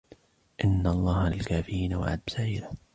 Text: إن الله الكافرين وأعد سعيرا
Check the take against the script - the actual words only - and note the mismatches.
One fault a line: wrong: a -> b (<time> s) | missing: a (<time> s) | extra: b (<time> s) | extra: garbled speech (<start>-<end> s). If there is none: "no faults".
no faults